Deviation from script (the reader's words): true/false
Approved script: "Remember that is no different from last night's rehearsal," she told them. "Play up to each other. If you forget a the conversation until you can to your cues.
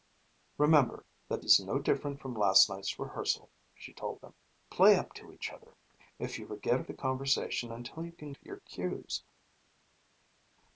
false